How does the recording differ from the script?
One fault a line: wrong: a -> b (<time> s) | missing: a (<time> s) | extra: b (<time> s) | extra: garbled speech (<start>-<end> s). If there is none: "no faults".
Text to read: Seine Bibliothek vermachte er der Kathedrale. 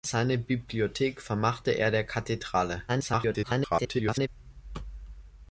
extra: garbled speech (2.9-4.3 s)